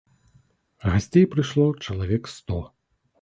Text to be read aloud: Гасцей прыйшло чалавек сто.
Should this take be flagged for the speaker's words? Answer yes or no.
no